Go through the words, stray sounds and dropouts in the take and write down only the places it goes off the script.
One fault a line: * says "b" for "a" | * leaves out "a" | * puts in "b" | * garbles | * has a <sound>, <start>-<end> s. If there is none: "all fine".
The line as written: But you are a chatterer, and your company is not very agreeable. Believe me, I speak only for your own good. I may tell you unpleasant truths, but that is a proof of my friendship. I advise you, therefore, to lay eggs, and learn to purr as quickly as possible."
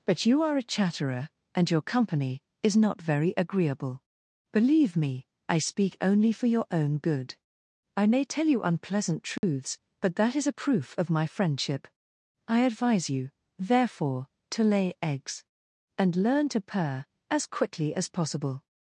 * has a dropout, 9.4-9.4 s